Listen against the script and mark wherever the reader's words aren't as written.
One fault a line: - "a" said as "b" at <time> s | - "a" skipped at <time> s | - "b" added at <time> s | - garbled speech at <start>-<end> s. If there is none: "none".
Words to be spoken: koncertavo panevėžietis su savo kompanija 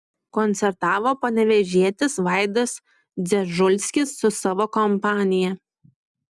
- "vaidas dzežulskis" added at 2.3 s